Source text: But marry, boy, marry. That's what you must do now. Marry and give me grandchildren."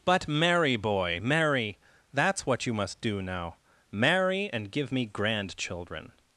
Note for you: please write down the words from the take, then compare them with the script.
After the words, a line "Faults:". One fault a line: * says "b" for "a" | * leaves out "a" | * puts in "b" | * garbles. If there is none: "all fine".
But marry, boy, marry. That's what you must do now. Marry and give me grandchildren."
Faults:
all fine